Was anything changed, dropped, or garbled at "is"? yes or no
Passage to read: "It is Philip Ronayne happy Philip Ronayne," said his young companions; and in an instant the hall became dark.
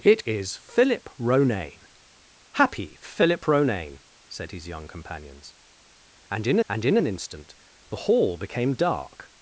no